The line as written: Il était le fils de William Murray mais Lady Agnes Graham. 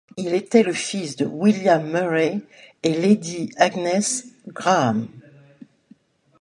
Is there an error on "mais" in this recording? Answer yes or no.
yes